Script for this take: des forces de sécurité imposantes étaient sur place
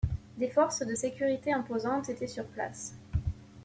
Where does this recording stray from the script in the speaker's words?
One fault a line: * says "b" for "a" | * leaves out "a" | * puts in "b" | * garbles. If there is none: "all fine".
all fine